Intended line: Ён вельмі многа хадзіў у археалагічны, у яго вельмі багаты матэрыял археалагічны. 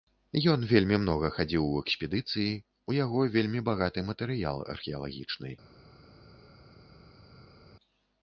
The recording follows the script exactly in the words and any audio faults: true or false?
false